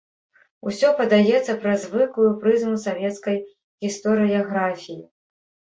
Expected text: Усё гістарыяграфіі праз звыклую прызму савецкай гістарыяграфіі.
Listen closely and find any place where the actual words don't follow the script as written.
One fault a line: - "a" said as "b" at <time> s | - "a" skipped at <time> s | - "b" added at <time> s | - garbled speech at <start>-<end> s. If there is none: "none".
- "гістарыяграфіі" said as "падаецца" at 1.0 s